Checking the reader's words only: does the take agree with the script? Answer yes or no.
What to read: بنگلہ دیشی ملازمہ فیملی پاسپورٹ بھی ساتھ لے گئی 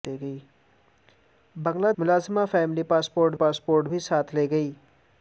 no